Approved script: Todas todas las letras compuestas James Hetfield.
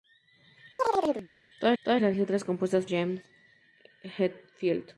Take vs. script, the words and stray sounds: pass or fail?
fail